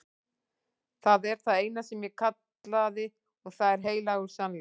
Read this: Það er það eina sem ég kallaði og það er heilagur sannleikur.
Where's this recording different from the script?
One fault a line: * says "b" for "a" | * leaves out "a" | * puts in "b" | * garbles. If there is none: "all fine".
all fine